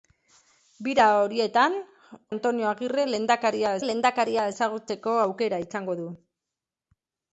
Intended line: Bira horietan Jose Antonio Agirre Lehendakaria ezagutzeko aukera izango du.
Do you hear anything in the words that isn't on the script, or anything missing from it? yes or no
yes